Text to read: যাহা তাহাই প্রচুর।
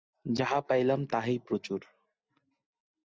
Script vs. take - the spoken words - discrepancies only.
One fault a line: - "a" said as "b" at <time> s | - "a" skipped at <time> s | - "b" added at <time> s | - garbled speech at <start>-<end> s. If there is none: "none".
- "পাইলাম" added at 0.6 s